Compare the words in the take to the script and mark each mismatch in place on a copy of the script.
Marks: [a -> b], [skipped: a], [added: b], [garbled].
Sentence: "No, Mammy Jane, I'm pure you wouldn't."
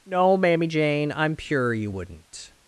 "No, Mammy Jane, I'm pure you wouldn't."